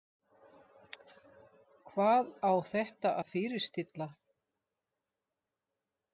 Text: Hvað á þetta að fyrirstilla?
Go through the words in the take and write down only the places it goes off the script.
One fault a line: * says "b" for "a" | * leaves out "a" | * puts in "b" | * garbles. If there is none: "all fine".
all fine